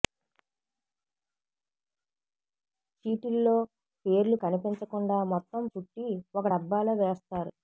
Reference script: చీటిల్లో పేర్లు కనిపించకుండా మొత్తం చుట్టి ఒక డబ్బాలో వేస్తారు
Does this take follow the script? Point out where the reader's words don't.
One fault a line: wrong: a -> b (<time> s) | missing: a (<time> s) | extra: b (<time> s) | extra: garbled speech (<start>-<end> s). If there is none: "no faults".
no faults